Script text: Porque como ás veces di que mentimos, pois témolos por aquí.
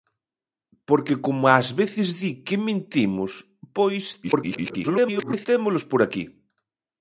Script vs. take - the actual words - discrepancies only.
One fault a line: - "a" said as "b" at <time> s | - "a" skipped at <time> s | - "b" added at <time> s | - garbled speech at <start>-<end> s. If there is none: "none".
- garbled speech at 4.2-5.5 s